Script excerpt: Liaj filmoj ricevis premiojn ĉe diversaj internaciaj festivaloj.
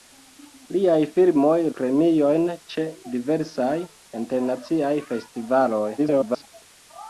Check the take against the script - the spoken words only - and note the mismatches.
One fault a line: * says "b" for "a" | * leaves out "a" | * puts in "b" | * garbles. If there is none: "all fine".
* leaves out "ricevis"
* garbles